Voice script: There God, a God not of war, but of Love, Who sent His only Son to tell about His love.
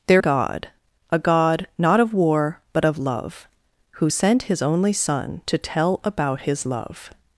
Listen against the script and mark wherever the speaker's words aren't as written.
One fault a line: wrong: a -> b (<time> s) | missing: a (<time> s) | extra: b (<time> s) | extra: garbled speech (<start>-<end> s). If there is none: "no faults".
no faults